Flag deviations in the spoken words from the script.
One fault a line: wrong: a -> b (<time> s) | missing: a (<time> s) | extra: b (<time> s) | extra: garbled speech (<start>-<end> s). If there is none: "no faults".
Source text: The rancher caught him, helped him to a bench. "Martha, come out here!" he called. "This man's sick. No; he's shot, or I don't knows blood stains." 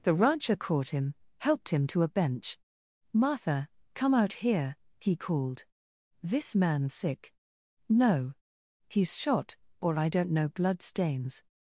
wrong: knows -> know (10.3 s)